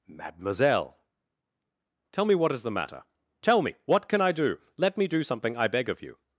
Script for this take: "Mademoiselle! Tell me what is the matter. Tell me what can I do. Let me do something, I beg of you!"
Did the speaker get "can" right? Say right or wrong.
right